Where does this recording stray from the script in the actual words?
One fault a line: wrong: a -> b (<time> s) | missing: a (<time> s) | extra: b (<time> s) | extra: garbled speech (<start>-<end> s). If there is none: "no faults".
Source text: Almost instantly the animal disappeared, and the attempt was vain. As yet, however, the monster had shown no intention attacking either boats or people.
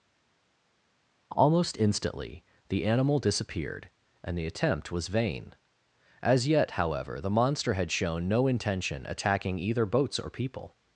no faults